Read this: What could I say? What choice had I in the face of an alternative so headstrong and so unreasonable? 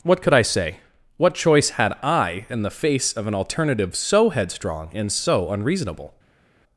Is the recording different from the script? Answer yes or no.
no